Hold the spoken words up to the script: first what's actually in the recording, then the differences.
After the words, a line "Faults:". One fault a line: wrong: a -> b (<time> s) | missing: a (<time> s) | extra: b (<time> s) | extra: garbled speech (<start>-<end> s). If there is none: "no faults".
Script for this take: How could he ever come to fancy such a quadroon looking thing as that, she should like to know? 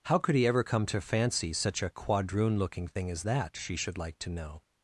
How could he ever come to fancy such a quadroon looking thing as that, she should like to know?
Faults:
no faults